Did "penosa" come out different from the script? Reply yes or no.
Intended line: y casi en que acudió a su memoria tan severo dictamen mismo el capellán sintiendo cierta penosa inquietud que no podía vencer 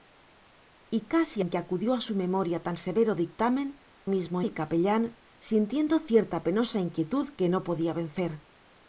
no